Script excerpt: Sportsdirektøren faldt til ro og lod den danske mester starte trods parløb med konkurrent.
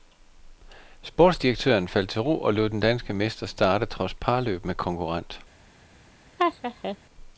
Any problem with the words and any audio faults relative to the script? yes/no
yes